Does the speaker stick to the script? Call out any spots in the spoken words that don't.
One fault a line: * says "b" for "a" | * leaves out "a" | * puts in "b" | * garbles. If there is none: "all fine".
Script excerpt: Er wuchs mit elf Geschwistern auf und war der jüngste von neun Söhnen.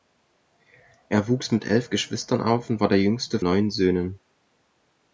* leaves out "von"